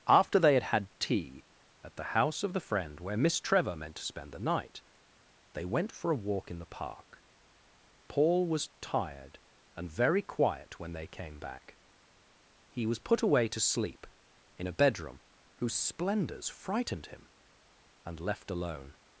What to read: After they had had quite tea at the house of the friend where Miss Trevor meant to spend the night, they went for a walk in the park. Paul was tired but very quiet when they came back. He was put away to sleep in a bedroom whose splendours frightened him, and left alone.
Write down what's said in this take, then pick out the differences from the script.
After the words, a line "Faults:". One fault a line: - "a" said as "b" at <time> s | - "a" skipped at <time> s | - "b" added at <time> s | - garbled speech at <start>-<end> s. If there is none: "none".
After they had had tea at the house of the friend where Miss Trevor meant to spend the night, they went for a walk in the park. Paul was tired and very quiet when they came back. He was put away to sleep in a bedroom whose splendours frightened him, and left alone.
Faults:
- "quite" skipped at 0.9 s
- "but" said as "and" at 9.8 s